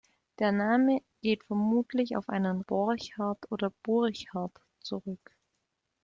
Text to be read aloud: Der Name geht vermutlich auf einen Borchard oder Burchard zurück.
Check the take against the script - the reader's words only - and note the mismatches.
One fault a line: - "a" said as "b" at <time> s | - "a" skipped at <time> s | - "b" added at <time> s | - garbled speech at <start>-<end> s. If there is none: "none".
none